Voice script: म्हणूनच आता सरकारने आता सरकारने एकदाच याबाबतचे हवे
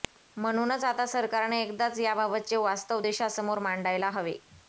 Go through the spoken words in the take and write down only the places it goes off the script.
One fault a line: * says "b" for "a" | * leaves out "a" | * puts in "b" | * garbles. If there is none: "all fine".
* says "एकदाच याबाबतचे वास्तव देशासमोर मांडायला" for "आता सरकारने एकदाच याबाबतचे"